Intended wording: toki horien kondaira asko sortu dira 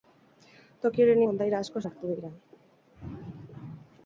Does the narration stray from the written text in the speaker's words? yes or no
no